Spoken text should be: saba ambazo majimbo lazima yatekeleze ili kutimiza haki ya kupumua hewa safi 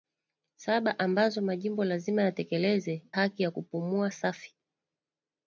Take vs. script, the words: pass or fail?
fail